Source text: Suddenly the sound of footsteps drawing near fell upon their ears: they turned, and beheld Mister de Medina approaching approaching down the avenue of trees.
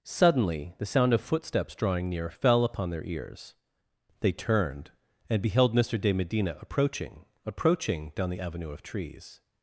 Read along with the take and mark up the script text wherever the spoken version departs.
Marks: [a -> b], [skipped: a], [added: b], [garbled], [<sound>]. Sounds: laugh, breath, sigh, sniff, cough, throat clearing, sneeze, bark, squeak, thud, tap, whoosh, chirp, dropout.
Suddenly the sound of footsteps drawing near fell upon their ears: they turned, and beheld Mister de Medina approaching approaching down the avenue of trees.